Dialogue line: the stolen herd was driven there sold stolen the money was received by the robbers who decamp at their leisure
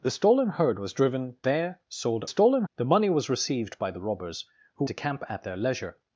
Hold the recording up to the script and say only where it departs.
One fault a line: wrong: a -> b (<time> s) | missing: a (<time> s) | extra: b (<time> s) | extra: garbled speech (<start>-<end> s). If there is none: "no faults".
no faults